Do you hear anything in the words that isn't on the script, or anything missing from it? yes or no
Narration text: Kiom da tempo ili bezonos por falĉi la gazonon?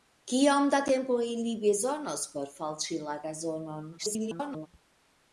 yes